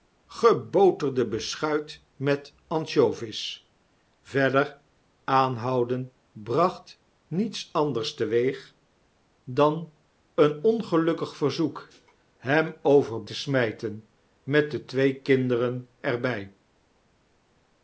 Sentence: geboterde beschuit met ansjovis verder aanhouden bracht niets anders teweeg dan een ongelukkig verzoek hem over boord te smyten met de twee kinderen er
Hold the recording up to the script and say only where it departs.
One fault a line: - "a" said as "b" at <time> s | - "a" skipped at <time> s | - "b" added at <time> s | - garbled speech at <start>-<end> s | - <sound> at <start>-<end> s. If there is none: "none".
- "boord" skipped at 13.2 s